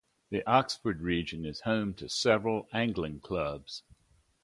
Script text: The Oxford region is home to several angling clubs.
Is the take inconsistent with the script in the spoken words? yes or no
no